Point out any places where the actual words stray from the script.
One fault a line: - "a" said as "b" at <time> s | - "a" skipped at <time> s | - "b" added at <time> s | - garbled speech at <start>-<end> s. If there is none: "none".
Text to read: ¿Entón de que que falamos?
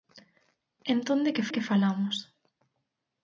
none